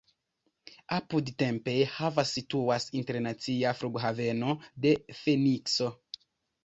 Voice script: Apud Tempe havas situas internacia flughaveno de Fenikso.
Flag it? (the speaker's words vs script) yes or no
no